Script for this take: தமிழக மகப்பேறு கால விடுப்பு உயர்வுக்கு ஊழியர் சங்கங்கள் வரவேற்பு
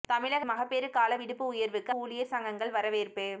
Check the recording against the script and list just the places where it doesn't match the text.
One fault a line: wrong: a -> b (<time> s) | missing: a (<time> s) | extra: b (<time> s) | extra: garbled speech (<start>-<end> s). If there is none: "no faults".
no faults